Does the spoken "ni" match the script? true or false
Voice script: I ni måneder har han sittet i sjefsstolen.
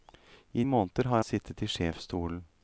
false